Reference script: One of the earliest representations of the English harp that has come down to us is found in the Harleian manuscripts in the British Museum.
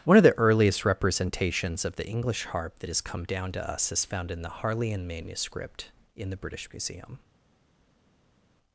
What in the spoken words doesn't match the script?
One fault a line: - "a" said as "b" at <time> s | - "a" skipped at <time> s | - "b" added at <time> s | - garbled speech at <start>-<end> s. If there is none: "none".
- "manuscripts" said as "manuscript" at 5.1 s